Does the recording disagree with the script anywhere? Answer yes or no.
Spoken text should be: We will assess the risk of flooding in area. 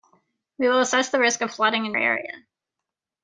no